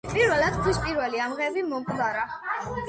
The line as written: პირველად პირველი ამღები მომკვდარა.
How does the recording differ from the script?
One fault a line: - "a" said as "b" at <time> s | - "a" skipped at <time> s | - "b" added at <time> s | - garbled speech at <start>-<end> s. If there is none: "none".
- "ქვის" added at 0.6 s